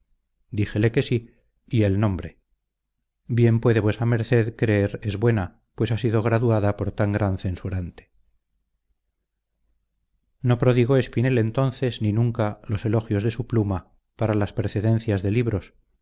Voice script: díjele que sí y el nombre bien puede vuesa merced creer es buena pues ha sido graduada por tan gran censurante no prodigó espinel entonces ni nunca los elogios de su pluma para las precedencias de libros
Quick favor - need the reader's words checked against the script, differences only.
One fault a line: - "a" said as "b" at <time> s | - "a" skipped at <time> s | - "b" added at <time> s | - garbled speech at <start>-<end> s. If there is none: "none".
none